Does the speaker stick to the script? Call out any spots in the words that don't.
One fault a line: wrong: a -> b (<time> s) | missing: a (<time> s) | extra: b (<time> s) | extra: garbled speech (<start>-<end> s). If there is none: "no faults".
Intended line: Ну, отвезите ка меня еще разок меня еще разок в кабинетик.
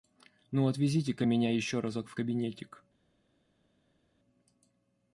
missing: меня еще разок (2.1 s)